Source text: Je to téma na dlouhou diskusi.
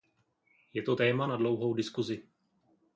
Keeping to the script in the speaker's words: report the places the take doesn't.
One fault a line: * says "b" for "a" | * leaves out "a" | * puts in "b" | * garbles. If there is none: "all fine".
all fine